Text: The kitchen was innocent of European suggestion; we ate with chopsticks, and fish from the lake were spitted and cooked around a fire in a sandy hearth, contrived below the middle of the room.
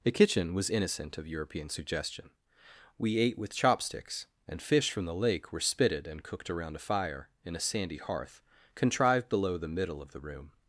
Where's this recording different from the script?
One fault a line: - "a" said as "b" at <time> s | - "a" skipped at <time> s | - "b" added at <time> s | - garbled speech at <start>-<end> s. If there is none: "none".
none